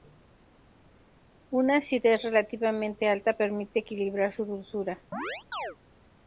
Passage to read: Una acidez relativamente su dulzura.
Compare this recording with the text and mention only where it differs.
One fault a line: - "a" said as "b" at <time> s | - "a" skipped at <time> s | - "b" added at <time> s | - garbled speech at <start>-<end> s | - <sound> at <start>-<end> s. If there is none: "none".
- "alta permite equilibrar" added at 3.1 s
- chirp at 5.1-5.8 s